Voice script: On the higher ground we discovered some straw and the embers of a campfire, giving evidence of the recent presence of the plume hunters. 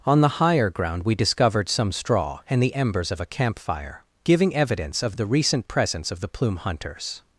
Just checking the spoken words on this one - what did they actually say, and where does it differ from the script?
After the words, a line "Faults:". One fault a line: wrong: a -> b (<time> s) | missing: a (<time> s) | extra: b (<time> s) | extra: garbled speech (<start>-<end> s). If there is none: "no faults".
On the higher ground we discovered some straw and the embers of a campfire, giving evidence of the recent presence of the plume hunters.
Faults:
no faults